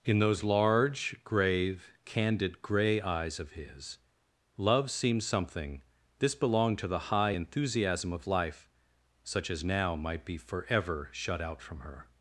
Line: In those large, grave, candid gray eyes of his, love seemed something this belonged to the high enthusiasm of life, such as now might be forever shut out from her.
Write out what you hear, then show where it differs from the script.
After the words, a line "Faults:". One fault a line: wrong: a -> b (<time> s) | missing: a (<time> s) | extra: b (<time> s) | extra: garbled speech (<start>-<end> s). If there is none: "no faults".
In those large, grave, candid gray eyes of his, love seemed something this belonged to the high enthusiasm of life, such as now might be forever shut out from her.
Faults:
no faults